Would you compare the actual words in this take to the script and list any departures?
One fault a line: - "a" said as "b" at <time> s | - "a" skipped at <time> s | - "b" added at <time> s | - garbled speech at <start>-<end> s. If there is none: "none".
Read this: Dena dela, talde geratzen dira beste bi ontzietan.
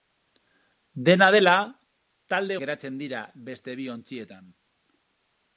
none